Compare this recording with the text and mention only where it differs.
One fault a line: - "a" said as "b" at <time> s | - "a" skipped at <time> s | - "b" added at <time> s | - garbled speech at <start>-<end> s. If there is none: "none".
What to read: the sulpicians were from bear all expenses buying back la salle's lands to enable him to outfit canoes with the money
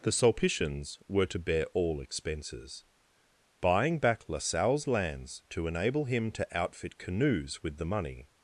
- "from" said as "to" at 1.3 s